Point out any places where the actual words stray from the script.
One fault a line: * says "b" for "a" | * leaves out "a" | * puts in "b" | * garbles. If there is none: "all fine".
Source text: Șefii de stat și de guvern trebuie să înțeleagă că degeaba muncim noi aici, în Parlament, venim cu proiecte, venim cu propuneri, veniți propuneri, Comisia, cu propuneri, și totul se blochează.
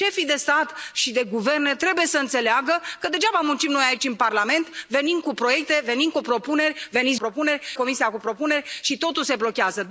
all fine